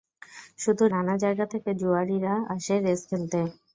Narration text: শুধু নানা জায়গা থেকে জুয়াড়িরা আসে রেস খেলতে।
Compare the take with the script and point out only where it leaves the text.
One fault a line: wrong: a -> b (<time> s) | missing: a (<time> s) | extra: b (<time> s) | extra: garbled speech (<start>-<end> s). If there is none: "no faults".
no faults